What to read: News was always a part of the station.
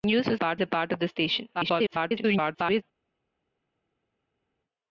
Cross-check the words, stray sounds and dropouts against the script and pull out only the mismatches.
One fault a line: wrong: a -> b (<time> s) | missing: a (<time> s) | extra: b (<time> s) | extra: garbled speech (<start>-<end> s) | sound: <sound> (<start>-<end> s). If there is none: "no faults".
wrong: always -> part (0.3 s)
extra: garbled speech (1.5-2.8 s)